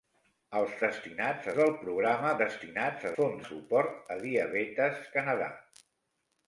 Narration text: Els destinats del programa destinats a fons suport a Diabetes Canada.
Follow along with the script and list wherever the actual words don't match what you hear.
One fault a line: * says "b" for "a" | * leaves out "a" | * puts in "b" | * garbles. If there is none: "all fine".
all fine